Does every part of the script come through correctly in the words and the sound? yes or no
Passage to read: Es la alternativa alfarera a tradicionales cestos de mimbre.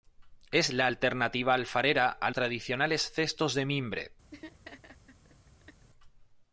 no